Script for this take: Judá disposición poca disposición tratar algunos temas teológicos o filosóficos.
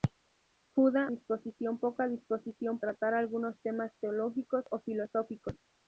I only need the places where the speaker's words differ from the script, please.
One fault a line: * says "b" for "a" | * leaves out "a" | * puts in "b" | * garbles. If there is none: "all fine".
all fine